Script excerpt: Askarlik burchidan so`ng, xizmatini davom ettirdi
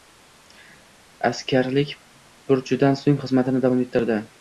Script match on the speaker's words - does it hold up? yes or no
yes